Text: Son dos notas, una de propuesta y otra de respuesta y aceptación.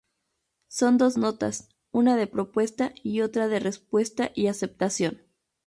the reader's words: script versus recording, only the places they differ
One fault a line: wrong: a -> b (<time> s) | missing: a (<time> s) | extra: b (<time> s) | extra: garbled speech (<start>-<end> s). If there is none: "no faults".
no faults